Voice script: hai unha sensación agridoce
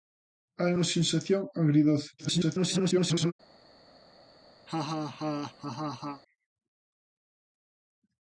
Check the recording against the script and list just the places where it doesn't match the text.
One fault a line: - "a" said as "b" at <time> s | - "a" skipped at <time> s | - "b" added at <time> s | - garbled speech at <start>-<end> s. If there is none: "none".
- garbled speech at 2.2-3.3 s